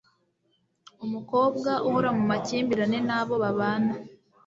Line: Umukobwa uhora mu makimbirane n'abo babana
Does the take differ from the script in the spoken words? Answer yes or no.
no